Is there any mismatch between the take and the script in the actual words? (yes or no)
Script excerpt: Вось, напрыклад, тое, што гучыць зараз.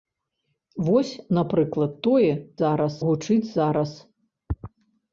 yes